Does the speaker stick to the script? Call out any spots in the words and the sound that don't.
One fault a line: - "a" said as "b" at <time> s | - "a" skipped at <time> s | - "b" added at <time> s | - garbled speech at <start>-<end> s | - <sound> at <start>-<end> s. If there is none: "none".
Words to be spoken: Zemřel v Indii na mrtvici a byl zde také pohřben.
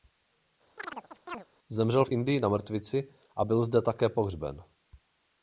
- chirp at 0.8-1.5 s